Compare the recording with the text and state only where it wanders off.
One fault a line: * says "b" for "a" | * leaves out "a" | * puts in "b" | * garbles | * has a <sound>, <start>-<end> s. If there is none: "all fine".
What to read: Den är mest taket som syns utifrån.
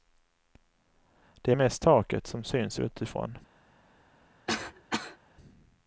* says "Det" for "Den"
* has a cough, 4.5-5.2 s